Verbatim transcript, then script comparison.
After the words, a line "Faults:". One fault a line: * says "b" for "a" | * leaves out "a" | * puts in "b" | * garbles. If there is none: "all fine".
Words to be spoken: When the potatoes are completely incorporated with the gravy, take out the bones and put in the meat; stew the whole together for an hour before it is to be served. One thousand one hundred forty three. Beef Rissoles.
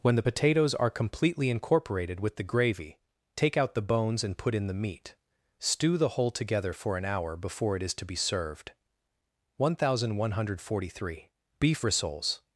When the potatoes are completely incorporated with the gravy, take out the bones and put in the meat; stew the whole together for an hour before it is to be served. One thousand one hundred forty three. Beef Rissoles.
Faults:
all fine